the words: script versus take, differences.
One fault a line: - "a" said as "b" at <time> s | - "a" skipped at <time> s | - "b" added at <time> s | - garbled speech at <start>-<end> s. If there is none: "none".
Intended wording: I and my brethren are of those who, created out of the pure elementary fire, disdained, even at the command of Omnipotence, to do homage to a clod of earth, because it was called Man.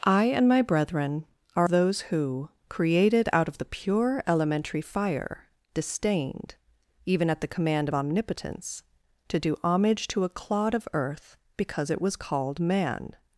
- "of" skipped at 1.7 s